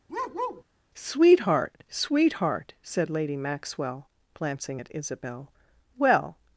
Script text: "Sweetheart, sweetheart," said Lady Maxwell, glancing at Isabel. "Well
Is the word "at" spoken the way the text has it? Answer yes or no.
yes